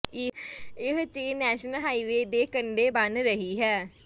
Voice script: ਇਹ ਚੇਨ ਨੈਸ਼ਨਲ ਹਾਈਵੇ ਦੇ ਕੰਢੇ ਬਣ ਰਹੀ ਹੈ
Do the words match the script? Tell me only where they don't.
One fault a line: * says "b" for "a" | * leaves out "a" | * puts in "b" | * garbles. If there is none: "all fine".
all fine